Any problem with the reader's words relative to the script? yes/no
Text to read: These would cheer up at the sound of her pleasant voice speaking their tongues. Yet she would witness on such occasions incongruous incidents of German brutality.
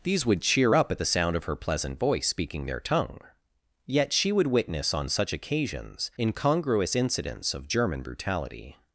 yes